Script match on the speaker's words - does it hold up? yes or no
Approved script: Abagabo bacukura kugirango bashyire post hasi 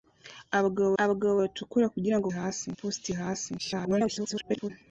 no